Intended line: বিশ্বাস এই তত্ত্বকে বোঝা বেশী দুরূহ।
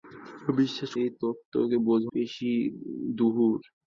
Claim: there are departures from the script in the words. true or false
false